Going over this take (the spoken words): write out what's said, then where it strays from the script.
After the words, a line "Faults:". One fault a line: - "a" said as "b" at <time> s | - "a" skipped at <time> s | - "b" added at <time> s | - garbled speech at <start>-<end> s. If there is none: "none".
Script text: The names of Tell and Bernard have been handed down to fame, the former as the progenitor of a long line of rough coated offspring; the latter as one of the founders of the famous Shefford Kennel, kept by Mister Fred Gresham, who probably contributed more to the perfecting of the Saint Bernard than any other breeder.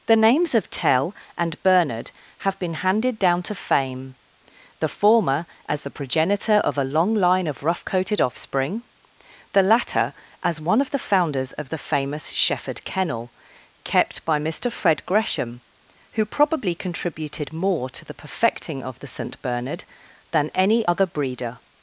The names of Tell and Bernard have been handed down to fame, the former as the progenitor of a long line of rough coated offspring; the latter as one of the founders of the famous Shefford Kennel, kept by Mister Fred Gresham, who probably contributed more to the perfecting of the Saint Bernard than any other breeder.
Faults:
none